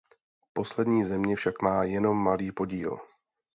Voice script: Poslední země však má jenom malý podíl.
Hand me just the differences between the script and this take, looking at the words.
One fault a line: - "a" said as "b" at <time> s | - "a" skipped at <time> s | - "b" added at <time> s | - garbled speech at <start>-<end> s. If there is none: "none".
none